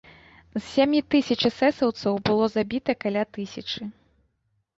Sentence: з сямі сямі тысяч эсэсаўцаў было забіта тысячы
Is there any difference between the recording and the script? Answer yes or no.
yes